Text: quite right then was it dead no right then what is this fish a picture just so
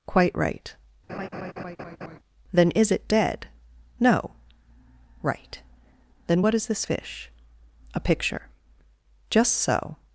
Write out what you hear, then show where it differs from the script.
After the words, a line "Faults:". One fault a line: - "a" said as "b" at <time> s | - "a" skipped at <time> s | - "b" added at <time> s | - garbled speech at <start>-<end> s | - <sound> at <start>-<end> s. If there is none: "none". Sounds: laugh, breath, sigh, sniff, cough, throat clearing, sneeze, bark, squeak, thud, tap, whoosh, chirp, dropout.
quite right then is it dead no right then what is this fish a picture just so
Faults:
- laugh at 1.1-2.2 s
- "was" said as "is" at 2.7 s